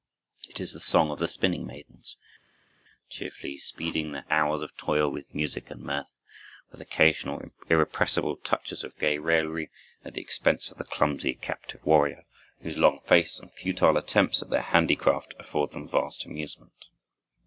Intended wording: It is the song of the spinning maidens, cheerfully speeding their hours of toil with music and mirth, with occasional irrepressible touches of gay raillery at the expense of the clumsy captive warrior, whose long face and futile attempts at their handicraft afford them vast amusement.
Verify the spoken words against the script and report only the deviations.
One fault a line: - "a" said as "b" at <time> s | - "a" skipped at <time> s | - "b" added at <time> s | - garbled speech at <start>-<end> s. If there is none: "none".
none